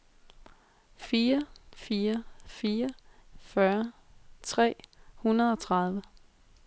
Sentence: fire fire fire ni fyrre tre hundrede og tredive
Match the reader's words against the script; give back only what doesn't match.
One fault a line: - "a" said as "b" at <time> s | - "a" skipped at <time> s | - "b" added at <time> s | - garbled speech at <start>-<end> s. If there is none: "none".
- "ni" skipped at 2.9 s